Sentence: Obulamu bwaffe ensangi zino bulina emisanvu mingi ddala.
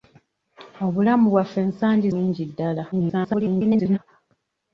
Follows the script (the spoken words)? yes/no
no